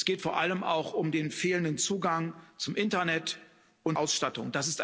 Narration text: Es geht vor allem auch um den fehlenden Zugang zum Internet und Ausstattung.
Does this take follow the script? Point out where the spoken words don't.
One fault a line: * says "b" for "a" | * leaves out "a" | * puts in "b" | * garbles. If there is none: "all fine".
all fine